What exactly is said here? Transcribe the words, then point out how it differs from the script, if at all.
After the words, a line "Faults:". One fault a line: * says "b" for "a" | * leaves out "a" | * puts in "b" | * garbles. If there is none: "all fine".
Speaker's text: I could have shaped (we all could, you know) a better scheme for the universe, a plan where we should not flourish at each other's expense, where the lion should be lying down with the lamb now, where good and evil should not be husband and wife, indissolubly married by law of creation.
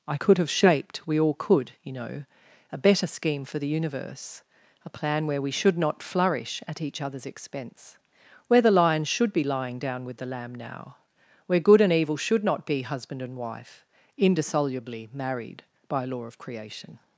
I could have shaped (we all could, you know) a better scheme for the universe, a plan where we should not flourish at each other's expense, where the lion should be lying down with the lamb now, where good and evil should not be husband and wife, indissolubly married by law of creation.
Faults:
all fine